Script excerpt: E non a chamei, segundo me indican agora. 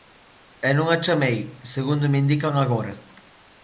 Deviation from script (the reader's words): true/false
false